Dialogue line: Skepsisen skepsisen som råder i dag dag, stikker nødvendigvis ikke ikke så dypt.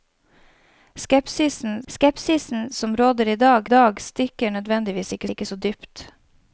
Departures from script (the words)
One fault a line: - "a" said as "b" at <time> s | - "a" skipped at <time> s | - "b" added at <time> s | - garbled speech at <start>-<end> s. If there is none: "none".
none